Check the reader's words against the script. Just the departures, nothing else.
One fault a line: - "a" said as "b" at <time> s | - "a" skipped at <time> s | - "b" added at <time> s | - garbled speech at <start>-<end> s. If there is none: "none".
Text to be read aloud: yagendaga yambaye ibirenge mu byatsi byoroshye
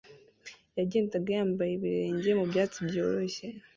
none